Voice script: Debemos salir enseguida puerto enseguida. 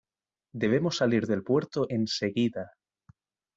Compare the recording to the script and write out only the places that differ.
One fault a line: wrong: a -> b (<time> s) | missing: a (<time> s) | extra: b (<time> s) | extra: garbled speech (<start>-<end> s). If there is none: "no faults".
wrong: enseguida -> del (1.3 s)